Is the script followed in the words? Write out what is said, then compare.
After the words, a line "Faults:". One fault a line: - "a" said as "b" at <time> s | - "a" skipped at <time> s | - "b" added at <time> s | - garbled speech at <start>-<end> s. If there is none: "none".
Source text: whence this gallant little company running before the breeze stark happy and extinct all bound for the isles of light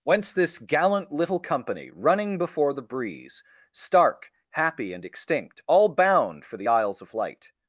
whence this gallant little company running before the breeze stark happy and extinct all bound for the isles of light
Faults:
none